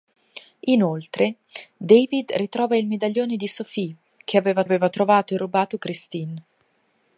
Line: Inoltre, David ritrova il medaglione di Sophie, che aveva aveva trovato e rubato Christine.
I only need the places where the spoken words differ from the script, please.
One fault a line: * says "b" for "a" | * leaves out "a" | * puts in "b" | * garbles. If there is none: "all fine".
all fine